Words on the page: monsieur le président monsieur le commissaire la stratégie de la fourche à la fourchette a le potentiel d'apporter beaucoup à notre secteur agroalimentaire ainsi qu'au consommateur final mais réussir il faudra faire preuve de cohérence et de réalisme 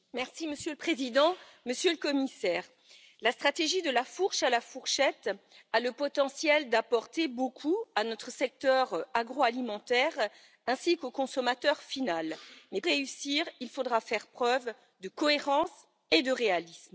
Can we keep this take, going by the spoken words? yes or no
yes